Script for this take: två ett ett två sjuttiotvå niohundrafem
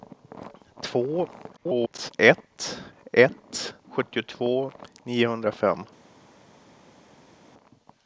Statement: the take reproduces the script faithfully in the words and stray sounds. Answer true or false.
false